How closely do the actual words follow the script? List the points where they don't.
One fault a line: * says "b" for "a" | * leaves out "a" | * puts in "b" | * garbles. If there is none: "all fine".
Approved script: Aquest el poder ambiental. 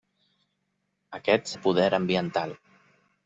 all fine